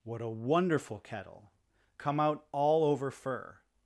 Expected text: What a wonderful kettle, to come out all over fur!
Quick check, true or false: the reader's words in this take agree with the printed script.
false